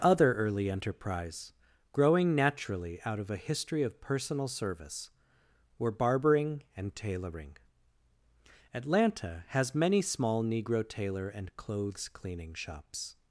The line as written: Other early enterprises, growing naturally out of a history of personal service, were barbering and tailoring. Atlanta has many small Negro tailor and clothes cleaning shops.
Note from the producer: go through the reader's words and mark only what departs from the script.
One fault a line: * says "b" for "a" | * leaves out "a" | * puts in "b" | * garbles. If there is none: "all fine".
* says "enterprise" for "enterprises"